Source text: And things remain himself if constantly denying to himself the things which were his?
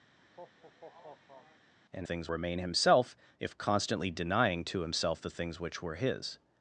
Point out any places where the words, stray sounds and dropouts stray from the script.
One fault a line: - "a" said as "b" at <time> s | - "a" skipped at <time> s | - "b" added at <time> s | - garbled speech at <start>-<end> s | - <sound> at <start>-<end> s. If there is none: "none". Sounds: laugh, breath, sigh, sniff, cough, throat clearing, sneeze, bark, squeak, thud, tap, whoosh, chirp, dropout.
- laugh at 0.2-1.7 s